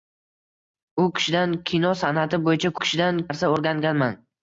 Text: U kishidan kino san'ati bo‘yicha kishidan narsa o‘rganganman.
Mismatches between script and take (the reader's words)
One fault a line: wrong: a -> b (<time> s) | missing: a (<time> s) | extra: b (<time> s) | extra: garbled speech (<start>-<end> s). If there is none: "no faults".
no faults